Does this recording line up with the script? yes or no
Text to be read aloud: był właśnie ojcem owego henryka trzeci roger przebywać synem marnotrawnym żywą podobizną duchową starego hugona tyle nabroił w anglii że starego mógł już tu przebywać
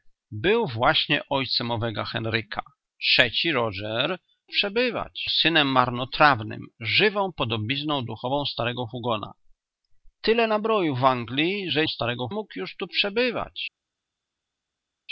yes